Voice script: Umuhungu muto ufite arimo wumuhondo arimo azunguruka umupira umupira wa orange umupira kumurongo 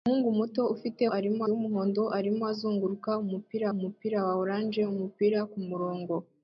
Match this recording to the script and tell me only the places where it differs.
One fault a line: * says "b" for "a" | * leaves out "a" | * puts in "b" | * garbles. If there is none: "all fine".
all fine